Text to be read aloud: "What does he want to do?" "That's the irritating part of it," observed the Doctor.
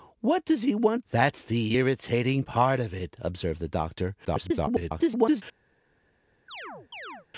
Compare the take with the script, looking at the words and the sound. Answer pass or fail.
fail